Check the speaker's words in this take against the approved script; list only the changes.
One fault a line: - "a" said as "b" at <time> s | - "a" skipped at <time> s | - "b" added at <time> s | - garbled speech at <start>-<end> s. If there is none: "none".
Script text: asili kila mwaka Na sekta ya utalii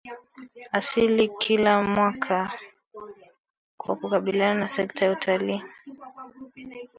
- "Kwa kukabiliana" added at 3.8 s